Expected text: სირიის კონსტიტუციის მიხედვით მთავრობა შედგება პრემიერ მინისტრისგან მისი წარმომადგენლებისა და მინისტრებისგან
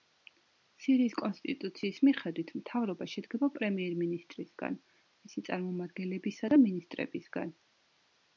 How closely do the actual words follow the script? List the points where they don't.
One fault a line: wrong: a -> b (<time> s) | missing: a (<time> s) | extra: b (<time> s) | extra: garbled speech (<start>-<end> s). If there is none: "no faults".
no faults